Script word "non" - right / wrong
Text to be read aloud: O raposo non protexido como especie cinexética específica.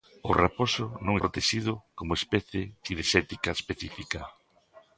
right